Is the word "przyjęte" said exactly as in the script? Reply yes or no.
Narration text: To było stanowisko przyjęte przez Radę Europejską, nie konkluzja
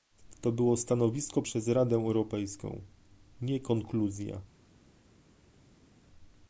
no